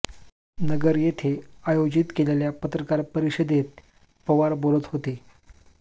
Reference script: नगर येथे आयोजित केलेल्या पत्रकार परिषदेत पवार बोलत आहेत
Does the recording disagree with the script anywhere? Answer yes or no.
yes